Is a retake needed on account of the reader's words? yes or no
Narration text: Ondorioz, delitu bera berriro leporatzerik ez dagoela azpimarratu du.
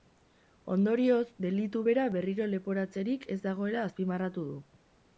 no